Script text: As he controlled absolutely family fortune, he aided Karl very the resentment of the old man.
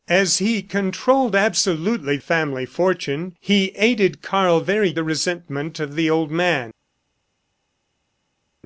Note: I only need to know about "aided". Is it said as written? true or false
true